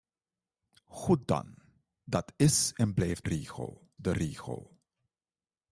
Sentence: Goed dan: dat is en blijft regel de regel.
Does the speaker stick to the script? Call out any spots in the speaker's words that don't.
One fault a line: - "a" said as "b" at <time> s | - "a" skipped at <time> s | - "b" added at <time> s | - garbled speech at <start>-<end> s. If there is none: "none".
none